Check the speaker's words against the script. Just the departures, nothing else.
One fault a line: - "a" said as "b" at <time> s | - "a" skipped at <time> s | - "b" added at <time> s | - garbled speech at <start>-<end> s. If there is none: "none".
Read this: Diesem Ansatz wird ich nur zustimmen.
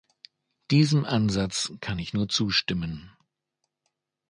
- "wird" said as "kann" at 1.8 s